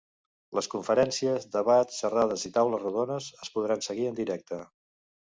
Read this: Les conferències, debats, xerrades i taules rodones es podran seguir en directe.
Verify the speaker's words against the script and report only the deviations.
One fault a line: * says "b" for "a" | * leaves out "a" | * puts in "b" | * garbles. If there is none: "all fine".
all fine